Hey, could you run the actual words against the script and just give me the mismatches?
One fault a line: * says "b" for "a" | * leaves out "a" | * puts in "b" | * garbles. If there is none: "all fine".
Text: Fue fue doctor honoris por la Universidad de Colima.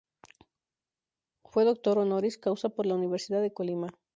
* leaves out "fue"
* puts in "causa"